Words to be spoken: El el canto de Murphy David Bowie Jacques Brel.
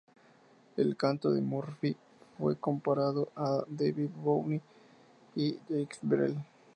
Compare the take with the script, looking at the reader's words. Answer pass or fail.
fail